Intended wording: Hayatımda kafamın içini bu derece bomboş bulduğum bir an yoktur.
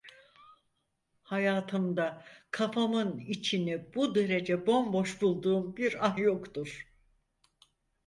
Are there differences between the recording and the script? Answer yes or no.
no